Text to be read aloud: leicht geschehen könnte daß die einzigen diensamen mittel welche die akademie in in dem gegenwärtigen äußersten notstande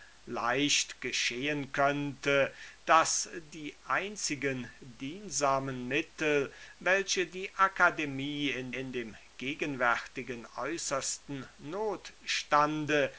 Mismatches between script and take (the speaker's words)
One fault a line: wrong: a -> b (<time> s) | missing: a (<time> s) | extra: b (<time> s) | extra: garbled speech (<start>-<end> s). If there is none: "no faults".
no faults